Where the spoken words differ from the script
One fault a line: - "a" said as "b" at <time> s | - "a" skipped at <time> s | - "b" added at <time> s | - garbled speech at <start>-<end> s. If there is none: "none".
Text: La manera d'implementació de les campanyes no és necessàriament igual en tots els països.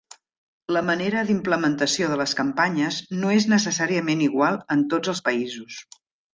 none